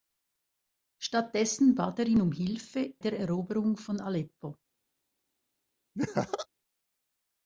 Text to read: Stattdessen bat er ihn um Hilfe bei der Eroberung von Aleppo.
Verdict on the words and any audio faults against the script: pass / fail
fail